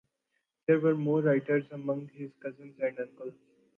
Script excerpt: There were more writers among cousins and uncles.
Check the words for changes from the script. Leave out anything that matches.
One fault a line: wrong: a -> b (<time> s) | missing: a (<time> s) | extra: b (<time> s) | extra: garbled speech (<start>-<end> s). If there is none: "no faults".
extra: his (2.1 s)